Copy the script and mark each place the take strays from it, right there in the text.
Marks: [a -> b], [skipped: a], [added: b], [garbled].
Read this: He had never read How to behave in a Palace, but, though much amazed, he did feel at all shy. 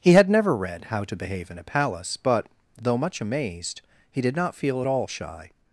He had never read How to behave in a Palace, but, though much amazed, he did [added: not] feel at all shy.